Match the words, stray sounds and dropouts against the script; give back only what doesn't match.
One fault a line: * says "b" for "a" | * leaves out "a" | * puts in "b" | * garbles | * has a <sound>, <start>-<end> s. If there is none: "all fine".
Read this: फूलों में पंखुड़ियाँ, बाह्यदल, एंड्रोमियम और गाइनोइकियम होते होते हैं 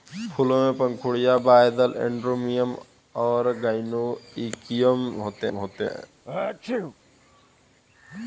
* has a sneeze, 6.2-7.0 s